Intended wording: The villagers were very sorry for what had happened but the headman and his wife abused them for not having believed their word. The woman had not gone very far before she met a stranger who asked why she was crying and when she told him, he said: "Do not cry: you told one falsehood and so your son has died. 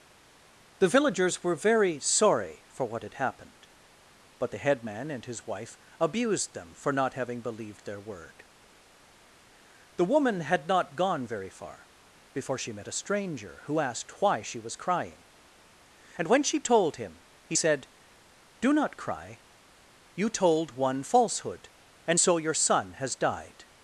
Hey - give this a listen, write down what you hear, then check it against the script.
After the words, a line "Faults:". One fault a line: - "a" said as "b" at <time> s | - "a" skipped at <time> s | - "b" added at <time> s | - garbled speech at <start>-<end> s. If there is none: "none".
The villagers were very sorry for what had happened but the headman and his wife abused them for not having believed their word. The woman had not gone very far before she met a stranger who asked why she was crying and when she told him, he said: "Do not cry: you told one falsehood and so your son has died.
Faults:
none